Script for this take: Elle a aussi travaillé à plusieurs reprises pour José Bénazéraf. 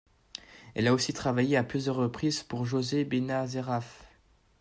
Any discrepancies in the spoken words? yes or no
no